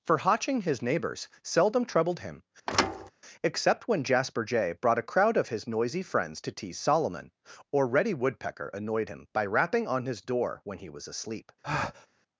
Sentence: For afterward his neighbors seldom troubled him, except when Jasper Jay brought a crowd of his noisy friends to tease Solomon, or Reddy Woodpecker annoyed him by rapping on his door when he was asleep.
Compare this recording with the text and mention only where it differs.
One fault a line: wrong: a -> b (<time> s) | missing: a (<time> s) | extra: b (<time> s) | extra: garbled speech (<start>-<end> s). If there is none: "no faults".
wrong: afterward -> hotching (0.2 s)